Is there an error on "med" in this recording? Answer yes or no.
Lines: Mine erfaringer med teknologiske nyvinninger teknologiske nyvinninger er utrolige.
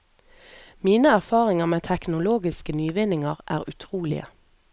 no